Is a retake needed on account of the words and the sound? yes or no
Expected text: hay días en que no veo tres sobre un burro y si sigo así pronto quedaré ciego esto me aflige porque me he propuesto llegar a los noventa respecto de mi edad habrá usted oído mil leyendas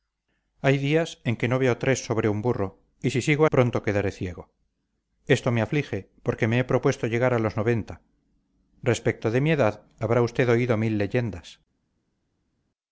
yes